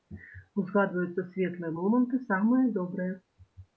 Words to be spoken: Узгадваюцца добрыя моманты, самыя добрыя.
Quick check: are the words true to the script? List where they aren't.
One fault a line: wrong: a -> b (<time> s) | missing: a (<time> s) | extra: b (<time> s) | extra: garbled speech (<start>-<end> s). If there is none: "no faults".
wrong: добрыя -> светлыя (1.3 s)